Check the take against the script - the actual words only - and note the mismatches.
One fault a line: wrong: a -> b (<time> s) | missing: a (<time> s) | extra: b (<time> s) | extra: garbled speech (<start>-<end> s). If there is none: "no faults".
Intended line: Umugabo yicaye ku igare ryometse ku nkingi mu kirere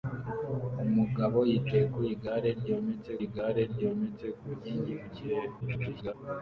extra: igare ryometse (3.2 s)
extra: garbled speech (5.6-6.1 s)